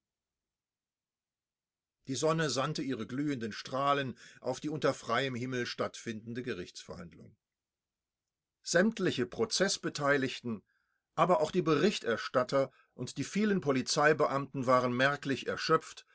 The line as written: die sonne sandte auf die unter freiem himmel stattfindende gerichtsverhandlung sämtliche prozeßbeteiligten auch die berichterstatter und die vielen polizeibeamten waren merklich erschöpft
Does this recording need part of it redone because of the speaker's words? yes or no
yes